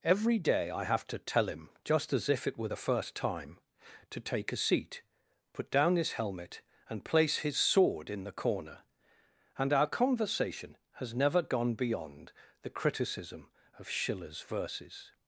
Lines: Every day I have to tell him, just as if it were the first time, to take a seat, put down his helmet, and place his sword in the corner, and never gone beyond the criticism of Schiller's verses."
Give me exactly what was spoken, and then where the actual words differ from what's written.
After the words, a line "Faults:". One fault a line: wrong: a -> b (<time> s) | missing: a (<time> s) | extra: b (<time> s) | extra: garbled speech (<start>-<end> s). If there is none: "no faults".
Every day I have to tell him, just as if it were the first time, to take a seat, put down his helmet, and place his sword in the corner, and our conversation has never gone beyond the criticism of Schiller's verses."
Faults:
extra: our conversation has (9.7 s)